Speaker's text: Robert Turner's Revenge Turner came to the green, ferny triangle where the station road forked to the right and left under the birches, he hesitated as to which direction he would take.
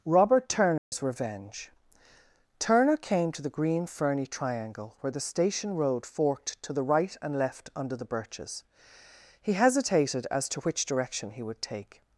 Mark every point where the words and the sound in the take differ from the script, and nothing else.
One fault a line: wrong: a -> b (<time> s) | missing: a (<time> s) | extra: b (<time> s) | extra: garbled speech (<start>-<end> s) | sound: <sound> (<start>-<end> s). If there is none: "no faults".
sound: dropout (0.8-0.9 s)